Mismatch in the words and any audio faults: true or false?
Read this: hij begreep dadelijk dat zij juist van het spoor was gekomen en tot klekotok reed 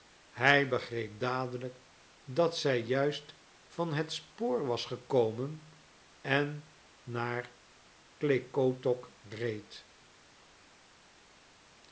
true